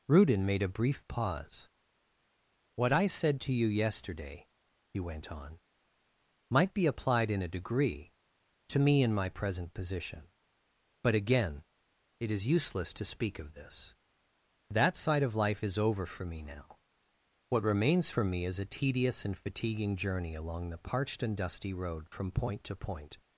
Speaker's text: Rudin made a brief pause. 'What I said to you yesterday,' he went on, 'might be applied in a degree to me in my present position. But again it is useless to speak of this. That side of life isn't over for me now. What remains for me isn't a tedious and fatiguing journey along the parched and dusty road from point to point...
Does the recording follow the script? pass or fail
fail